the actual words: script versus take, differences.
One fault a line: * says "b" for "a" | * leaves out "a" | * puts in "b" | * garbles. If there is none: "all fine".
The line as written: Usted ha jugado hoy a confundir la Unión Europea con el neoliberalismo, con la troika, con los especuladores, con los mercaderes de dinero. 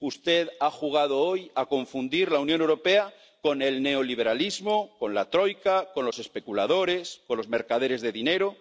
all fine